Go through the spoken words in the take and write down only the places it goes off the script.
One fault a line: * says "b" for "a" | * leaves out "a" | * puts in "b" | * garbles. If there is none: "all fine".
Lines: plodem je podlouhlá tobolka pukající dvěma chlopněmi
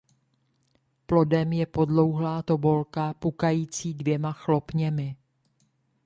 all fine